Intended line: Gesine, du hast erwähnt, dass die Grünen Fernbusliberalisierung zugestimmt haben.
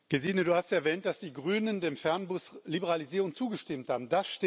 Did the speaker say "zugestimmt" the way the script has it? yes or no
yes